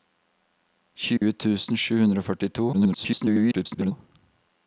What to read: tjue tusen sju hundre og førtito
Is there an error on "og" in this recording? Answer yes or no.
no